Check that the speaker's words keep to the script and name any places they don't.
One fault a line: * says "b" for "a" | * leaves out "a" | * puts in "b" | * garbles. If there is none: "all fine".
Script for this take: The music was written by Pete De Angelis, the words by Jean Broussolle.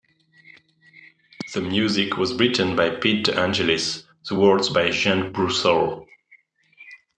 all fine